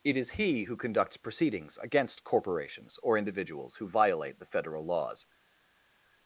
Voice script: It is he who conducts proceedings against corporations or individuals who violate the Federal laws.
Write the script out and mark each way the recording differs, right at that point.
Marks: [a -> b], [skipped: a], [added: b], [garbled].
It is he who conducts proceedings against corporations or individuals who violate the Federal laws.